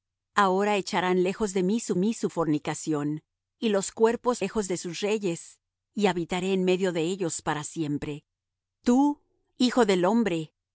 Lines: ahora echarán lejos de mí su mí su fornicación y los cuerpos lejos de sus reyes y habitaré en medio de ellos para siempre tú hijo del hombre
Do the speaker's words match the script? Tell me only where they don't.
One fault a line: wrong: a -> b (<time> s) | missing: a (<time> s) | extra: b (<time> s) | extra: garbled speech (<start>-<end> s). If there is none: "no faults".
no faults